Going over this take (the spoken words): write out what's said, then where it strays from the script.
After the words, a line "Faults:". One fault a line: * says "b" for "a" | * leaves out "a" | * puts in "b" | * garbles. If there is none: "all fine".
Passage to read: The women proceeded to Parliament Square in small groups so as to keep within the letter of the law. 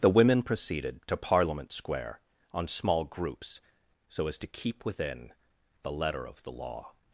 The women proceeded to Parliament Square on small groups so as to keep within the letter of the law.
Faults:
* says "on" for "in"